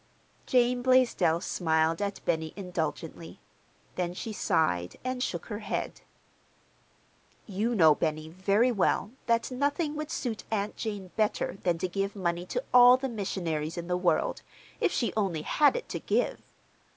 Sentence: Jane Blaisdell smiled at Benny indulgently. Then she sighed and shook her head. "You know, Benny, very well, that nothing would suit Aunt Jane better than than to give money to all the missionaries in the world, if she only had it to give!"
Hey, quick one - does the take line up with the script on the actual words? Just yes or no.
no